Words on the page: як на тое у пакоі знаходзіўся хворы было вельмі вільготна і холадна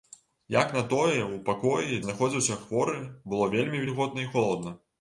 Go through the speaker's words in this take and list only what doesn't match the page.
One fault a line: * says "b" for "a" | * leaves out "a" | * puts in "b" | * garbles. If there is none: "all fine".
all fine